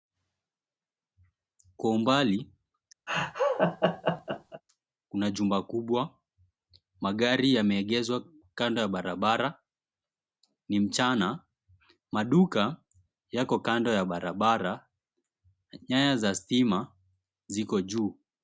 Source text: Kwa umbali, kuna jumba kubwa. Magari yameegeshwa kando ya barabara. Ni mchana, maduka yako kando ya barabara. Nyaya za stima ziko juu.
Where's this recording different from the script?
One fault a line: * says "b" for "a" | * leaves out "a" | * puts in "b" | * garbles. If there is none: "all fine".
all fine